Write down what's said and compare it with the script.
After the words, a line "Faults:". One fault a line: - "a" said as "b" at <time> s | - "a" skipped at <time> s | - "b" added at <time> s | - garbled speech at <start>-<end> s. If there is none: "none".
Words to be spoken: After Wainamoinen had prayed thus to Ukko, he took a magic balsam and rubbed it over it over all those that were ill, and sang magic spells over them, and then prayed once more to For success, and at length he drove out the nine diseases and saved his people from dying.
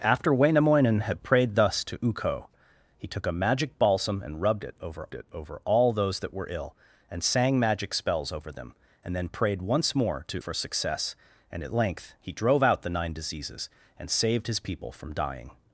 After Wainamoinen had prayed thus to Ukko, he took a magic balsam and rubbed it over it over all those that were ill, and sang magic spells over them, and then prayed once more to For success, and at length he drove out the nine diseases and saved his people from dying.
Faults:
none